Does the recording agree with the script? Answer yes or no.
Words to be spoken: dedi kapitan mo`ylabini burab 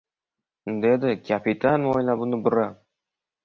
yes